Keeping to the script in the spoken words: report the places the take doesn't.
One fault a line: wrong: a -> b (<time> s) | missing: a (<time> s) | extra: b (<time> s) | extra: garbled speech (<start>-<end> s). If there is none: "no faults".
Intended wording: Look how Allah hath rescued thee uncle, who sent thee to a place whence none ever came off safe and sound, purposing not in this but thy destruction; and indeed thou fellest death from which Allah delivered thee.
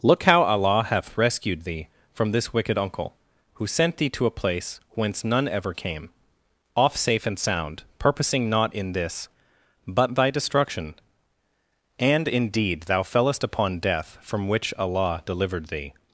extra: from this wicked (2.1 s)
extra: upon (13.4 s)